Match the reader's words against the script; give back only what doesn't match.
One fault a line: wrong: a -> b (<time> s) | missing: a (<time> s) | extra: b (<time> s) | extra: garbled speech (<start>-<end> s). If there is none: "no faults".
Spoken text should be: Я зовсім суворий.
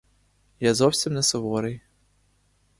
extra: не (1.1 s)